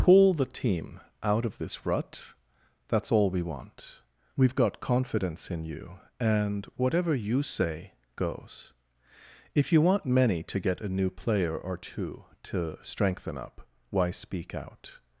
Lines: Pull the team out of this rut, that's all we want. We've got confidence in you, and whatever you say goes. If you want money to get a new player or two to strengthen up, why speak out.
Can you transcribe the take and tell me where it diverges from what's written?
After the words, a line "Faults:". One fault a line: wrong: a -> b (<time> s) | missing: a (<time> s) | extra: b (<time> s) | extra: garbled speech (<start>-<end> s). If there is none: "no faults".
Pull the team out of this rut, that's all we want. We've got confidence in you, and whatever you say goes. If you want many to get a new player or two to strengthen up, why speak out.
Faults:
wrong: money -> many (10.0 s)